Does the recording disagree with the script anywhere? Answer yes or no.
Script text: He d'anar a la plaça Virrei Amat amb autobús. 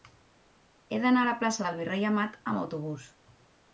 yes